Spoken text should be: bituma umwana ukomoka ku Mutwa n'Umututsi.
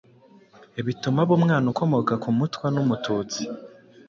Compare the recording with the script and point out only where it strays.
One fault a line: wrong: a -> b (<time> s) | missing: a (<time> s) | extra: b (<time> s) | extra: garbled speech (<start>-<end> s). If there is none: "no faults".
extra: aba (1.2 s)